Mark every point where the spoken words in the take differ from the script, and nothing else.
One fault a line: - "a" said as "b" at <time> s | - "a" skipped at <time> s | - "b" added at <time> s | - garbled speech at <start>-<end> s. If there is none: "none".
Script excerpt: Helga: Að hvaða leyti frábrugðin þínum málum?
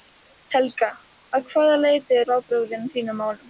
none